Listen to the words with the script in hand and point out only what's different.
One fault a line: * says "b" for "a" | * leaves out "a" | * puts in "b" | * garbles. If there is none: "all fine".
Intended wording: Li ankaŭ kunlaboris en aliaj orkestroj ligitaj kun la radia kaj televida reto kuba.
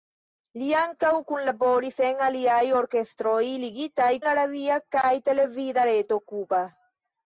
* leaves out "kun"